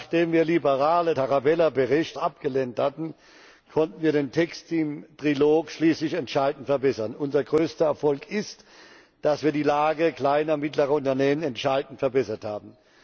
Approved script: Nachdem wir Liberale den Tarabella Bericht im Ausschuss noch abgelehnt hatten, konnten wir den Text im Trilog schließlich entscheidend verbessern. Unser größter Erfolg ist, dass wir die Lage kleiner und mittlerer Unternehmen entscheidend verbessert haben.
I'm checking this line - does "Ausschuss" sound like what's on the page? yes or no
no